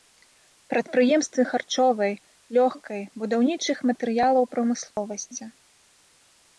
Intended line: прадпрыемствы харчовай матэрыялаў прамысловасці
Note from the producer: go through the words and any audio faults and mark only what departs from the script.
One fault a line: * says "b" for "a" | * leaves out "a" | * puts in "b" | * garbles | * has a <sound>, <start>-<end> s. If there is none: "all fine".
* puts in "лёгкай будаўнічых"
* has a dropout, 4.9-5.0 s